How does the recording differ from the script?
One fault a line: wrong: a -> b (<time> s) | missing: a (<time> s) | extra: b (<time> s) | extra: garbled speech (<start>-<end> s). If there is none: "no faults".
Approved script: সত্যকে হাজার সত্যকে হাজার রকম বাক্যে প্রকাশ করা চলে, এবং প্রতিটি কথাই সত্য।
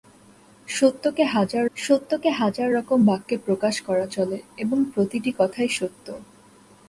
no faults